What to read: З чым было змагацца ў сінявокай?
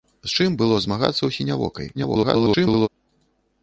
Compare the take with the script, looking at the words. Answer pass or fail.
fail